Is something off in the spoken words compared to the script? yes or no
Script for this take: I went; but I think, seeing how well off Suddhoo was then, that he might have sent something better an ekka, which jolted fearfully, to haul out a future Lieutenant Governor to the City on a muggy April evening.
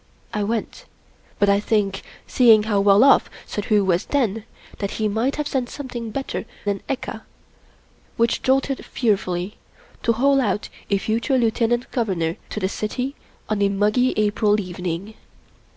no